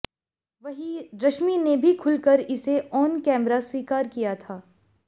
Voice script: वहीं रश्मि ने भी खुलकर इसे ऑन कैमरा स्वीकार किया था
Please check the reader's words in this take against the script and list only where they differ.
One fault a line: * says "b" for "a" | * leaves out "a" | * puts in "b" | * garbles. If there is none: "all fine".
all fine